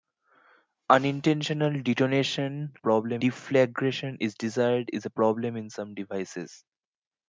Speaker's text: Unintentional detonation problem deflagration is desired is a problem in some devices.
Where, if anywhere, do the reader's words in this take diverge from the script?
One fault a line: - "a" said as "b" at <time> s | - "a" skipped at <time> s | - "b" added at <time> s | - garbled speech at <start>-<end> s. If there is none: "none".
none